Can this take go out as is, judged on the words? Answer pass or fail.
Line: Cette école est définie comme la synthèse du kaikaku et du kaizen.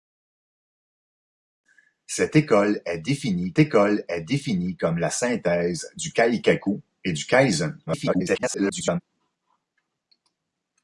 fail